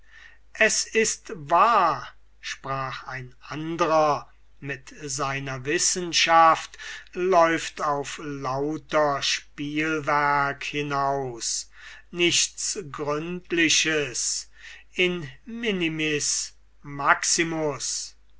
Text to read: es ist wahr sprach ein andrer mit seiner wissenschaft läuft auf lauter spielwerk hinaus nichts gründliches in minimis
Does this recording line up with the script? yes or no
yes